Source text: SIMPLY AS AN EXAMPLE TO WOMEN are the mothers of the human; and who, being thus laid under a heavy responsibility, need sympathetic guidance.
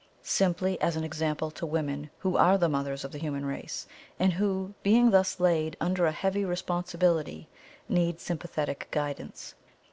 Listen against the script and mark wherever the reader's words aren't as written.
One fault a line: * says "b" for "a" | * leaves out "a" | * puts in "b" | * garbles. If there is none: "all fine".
* puts in "who"
* puts in "race"